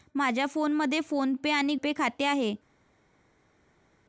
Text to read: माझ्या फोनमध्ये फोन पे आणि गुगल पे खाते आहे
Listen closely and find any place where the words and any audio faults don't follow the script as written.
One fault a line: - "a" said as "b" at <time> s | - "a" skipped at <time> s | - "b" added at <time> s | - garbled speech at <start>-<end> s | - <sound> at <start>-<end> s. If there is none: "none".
- "गुगल" skipped at 1.8 s